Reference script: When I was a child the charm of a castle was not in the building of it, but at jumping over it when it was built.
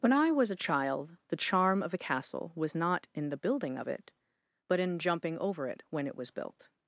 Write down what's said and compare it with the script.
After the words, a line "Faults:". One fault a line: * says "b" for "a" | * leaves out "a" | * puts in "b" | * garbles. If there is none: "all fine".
When I was a child the charm of a castle was not in the building of it, but in jumping over it when it was built.
Faults:
* says "in" for "at"